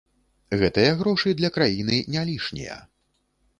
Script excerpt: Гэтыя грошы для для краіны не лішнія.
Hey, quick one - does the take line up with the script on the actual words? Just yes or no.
no